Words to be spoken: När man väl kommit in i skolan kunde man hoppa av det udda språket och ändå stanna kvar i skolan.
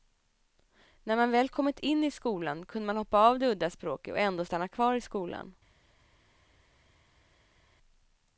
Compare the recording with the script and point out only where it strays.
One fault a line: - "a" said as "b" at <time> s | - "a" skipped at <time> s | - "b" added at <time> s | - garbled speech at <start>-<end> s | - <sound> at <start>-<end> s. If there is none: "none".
none